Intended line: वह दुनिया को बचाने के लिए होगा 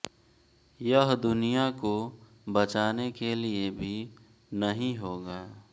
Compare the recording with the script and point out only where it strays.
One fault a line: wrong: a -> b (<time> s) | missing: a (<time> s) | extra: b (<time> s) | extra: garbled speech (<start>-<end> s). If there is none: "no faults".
wrong: वह -> यह (0.8 s)
extra: भी नहीं (3.7 s)